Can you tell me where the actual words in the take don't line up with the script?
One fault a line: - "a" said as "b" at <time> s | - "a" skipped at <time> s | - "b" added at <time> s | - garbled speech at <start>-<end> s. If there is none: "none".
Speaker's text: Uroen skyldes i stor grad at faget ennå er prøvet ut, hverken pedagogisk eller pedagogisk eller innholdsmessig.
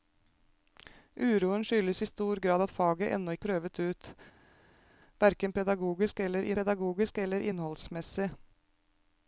none